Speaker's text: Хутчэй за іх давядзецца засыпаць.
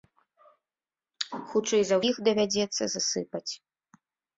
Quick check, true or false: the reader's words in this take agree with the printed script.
true